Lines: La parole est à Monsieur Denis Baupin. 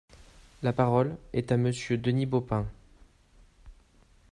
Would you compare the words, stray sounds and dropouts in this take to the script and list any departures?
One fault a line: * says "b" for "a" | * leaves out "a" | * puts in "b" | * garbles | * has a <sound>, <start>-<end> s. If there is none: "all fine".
all fine